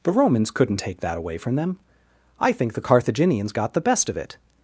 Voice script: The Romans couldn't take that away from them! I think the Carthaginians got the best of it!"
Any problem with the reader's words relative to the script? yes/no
no